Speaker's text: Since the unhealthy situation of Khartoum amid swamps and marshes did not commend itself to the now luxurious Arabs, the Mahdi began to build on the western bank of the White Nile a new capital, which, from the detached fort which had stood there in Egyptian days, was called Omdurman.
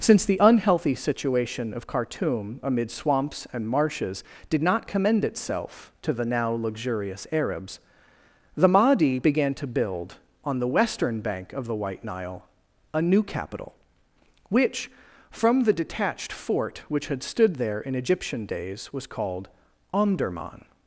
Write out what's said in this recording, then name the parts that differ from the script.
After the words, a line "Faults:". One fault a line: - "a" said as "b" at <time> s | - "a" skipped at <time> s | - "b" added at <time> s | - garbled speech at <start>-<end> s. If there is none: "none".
Since the unhealthy situation of Khartoum amid swamps and marshes did not commend itself to the now luxurious Arabs, the Mahdi began to build on the western bank of the White Nile a new capital, which, from the detached fort which had stood there in Egyptian days, was called Omdurman.
Faults:
none